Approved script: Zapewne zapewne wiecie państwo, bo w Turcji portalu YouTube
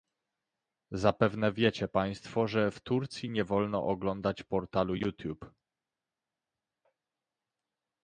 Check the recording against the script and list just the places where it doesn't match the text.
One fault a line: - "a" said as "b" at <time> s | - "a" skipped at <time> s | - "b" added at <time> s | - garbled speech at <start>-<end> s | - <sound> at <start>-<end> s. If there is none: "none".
- "zapewne" skipped at 1.5 s
- "bo" said as "że" at 2.5 s
- "nie wolno oglądać" added at 3.3 s